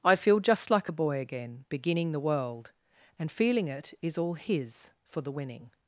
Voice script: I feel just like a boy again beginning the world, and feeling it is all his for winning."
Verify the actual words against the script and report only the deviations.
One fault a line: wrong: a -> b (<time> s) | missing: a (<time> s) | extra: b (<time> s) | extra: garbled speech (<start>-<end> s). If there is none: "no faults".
extra: the (5.2 s)